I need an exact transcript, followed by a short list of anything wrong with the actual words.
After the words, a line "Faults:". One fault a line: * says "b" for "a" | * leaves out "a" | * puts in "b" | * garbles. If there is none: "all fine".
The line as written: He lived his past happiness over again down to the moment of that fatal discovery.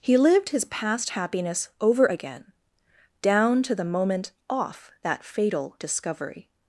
He lived his past happiness over again down to the moment off that fatal discovery.
Faults:
* says "off" for "of"